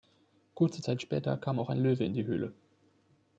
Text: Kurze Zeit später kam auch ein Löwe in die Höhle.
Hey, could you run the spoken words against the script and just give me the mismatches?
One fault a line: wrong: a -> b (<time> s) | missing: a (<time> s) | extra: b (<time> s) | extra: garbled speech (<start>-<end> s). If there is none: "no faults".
no faults